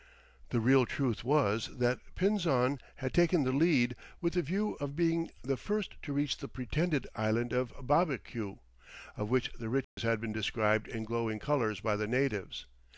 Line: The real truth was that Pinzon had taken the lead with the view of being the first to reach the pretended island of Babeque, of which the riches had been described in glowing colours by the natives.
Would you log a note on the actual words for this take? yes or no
no